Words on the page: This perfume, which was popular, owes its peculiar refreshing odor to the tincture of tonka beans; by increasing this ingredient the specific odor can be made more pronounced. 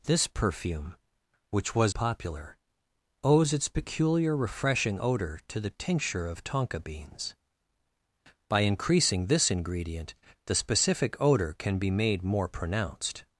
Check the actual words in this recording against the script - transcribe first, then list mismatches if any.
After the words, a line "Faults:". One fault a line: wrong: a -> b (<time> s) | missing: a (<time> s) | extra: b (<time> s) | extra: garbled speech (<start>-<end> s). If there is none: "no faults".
This perfume, which was popular, owes its peculiar refreshing odor to the tincture of tonka beans; by increasing this ingredient the specific odor can be made more pronounced.
Faults:
no faults